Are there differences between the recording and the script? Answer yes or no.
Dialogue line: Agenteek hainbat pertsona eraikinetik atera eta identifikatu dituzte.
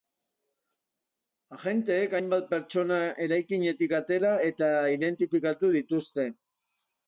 no